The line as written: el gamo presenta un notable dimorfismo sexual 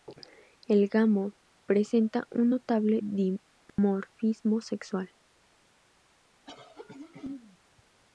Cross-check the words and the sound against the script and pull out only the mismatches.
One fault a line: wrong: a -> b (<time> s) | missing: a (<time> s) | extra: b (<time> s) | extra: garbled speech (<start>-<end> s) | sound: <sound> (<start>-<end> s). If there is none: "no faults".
sound: dropout (3.7-3.8 s)
sound: throat clearing (6.4-7.6 s)